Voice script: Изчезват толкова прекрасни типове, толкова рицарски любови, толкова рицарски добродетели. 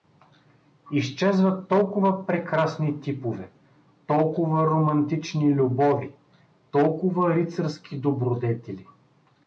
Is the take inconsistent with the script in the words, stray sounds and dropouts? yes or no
yes